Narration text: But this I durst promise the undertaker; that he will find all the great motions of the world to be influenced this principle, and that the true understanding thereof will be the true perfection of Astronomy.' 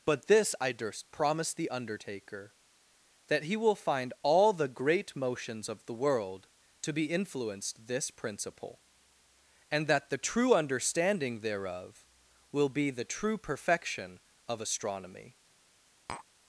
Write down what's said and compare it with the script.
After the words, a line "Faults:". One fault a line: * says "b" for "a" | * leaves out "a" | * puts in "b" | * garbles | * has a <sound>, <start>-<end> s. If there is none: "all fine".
But this I durst promise the undertaker; that he will find all the great motions of the world to be influenced this principle, and that the true understanding thereof will be the true perfection of Astronomy.'
Faults:
* has a tap, 16.1-16.3 s